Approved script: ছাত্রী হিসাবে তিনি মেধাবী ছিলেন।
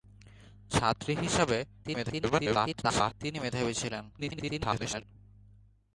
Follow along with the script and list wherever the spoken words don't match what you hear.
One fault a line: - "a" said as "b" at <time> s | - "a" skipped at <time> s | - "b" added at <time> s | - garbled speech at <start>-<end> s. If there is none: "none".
- garbled speech at 1.8-3.1 s
- garbled speech at 4.1-5.0 s